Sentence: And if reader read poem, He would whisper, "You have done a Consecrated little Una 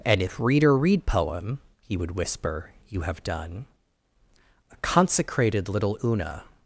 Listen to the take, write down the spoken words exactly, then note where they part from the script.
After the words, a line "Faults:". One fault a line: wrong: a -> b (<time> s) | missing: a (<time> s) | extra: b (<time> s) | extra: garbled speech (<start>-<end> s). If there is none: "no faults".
And if reader read poem, He would whisper, "You have done a Consecrated little Una
Faults:
no faults